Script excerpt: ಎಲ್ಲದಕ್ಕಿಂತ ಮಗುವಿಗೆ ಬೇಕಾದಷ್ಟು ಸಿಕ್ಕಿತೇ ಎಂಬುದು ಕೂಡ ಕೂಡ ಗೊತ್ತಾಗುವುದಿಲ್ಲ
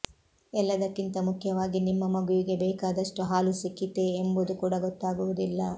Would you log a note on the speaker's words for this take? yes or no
yes